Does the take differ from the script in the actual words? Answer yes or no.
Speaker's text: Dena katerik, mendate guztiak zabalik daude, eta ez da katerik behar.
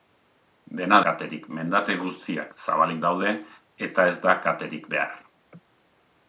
no